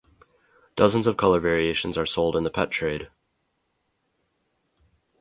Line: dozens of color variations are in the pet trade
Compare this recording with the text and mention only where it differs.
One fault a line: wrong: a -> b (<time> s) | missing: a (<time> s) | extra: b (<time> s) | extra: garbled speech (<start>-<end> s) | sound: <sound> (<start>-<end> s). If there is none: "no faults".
extra: sold (2.1 s)